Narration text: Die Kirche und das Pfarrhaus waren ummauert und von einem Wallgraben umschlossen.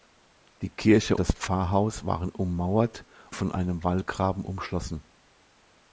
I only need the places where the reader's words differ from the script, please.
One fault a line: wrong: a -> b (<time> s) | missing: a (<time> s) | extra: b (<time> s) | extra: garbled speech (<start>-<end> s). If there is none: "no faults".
missing: und (1.1 s)
missing: und (3.1 s)